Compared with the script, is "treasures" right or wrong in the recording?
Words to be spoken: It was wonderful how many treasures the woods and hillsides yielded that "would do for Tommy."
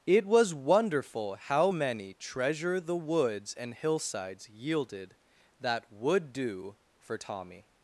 wrong